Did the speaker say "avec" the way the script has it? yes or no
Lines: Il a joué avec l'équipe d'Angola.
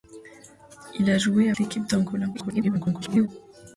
no